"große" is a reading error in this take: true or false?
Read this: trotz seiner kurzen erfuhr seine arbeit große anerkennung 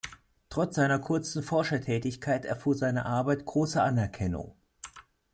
false